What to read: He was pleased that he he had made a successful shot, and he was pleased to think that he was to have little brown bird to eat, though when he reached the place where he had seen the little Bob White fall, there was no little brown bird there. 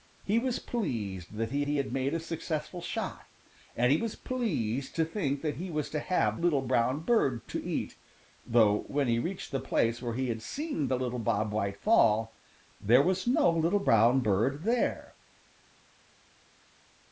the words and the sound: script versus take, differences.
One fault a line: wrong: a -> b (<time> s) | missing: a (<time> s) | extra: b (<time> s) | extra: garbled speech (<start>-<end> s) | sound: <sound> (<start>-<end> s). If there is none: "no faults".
no faults